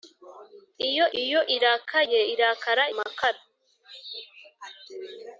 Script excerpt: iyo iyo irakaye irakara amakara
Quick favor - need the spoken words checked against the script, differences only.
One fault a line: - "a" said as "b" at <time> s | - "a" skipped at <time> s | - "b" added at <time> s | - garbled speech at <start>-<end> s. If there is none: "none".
none